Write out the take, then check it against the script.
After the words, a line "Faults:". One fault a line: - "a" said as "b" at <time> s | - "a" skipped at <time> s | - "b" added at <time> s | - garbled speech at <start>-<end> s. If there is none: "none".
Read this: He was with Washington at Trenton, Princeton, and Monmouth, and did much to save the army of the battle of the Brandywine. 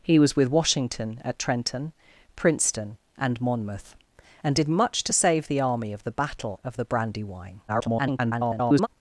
He was with Washington at Trenton, Princeton, and Monmouth, and did much to save the army of the battle of the Brandywine. [garbled]
Faults:
- garbled speech at 7.7-8.9 s